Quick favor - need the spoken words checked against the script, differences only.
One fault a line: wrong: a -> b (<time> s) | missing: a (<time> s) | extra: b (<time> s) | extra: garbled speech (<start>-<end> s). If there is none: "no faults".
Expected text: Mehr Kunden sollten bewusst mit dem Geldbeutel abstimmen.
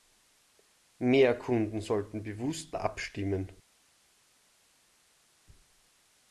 missing: mit dem Geldbeutel (2.8 s)